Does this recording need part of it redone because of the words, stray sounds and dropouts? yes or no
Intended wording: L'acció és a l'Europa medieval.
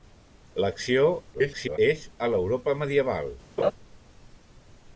yes